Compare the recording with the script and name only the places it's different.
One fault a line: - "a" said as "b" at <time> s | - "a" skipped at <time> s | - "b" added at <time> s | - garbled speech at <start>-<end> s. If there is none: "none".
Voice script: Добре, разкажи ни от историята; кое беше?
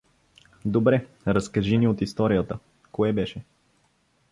none